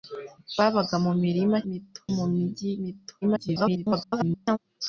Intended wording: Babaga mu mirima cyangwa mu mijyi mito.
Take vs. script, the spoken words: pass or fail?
fail